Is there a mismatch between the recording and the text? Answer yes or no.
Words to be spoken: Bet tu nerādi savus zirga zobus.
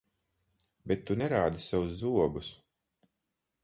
yes